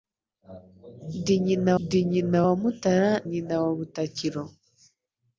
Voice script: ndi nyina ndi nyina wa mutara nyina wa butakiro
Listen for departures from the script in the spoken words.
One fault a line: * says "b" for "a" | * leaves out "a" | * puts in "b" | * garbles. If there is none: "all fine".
all fine